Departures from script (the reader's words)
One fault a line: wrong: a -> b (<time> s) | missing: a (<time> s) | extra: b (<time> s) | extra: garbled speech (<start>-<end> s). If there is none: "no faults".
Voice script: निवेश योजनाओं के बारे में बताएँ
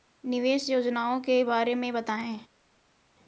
no faults